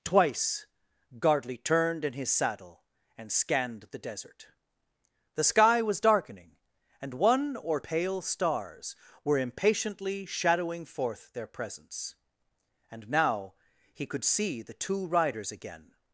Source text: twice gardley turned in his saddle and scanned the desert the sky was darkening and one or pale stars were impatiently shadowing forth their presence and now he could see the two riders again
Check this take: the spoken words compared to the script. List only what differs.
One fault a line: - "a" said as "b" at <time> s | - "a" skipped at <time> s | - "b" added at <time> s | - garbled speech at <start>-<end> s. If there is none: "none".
none